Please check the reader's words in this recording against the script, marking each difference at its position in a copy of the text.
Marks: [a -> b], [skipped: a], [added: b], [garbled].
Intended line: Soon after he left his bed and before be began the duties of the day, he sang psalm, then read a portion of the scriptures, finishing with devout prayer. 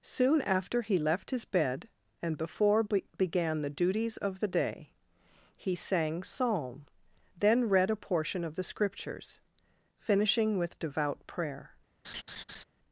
Soon after he left his bed and before be began the duties of the day, he sang psalm, then read a portion of the scriptures, finishing with devout prayer.